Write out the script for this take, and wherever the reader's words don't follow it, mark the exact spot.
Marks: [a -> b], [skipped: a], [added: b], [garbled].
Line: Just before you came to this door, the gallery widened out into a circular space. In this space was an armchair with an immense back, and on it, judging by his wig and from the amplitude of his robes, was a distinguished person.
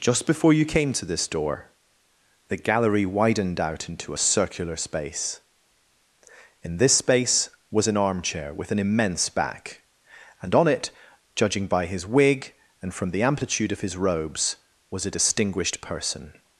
Just before you came to this door, the gallery widened out into a circular space. In this space was an armchair with an immense back, and on it, judging by his wig and from the amplitude of his robes, was a distinguished person.